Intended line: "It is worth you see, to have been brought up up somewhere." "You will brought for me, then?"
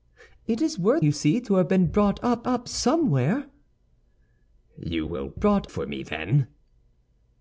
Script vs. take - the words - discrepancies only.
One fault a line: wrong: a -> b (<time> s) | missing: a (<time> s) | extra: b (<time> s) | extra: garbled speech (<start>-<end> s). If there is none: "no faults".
no faults